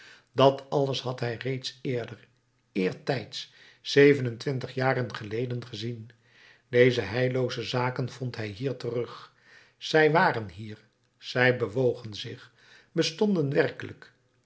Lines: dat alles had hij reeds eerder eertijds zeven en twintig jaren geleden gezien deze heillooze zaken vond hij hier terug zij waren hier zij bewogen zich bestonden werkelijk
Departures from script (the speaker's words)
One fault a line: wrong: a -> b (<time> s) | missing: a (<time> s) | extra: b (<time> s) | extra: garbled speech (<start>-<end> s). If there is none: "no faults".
no faults